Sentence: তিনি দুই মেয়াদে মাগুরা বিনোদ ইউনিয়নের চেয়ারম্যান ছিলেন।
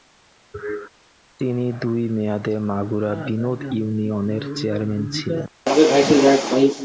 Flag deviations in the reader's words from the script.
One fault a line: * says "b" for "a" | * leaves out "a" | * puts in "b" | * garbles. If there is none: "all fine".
all fine